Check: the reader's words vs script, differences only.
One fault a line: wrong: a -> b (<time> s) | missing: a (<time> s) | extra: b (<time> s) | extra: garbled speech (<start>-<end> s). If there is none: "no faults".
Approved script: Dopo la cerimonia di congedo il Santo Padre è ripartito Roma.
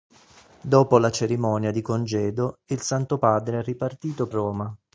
no faults